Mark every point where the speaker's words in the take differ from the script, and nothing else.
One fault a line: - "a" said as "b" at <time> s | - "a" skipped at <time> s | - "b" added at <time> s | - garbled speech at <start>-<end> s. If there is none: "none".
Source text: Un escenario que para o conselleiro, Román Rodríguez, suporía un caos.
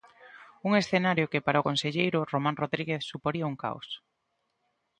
none